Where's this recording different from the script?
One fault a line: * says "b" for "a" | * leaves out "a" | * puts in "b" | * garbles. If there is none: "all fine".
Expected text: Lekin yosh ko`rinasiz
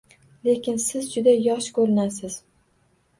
* puts in "siz juda"